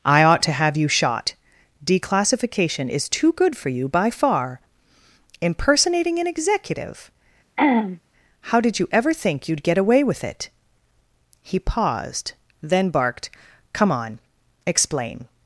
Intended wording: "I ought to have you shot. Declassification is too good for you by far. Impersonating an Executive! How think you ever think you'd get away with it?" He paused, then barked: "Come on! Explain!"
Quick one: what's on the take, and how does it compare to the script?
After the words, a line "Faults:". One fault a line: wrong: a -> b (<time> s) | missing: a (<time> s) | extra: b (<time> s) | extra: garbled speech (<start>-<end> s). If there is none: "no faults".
"I ought to have you shot. Declassification is too good for you by far. Impersonating an Executive! How did you ever think you'd get away with it?" He paused, then barked: "Come on! Explain!"
Faults:
wrong: think -> did (8.6 s)